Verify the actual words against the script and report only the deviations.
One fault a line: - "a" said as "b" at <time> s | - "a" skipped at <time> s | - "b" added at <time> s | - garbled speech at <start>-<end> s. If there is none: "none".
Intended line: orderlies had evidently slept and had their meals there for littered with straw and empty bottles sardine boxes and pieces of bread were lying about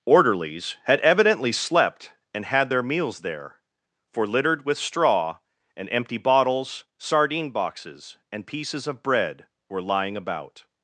none